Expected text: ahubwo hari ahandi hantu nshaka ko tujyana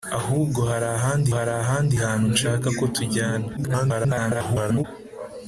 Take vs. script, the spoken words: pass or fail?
fail